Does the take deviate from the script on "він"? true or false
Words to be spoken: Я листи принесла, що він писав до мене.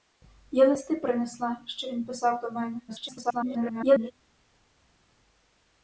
false